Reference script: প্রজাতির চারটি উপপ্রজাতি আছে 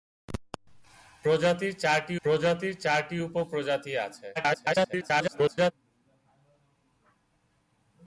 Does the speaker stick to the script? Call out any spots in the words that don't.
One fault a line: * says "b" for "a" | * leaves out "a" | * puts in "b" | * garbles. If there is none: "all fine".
* puts in "প্রজাতির চারটি"
* garbles